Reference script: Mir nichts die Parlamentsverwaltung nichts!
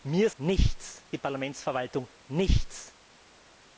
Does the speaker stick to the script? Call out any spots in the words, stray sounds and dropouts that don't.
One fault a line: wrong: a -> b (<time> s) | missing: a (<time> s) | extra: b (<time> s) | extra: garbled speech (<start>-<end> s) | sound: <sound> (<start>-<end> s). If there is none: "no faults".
no faults